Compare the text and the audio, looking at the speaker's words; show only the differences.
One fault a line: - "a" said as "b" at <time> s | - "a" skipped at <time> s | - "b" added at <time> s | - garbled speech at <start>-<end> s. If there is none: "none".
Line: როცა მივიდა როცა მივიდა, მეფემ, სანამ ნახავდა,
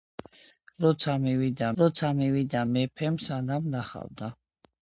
none